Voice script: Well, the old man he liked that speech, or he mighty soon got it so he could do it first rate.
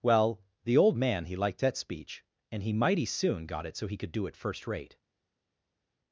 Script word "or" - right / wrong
wrong